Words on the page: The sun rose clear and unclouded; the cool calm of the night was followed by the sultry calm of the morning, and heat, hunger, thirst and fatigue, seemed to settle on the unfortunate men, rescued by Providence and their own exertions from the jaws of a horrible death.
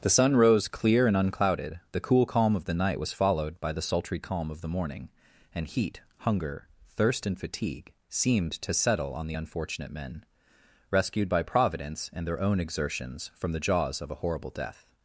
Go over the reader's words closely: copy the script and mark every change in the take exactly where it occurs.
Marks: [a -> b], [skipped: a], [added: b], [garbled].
The sun rose clear and unclouded; the cool calm of the night was followed by the sultry calm of the morning, and heat, hunger, thirst and fatigue, seemed to settle on the unfortunate men, rescued by Providence and their own exertions from the jaws of a horrible death.